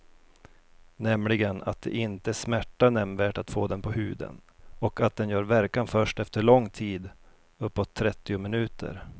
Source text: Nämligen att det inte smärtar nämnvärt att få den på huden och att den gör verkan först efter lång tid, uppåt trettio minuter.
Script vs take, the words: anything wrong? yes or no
no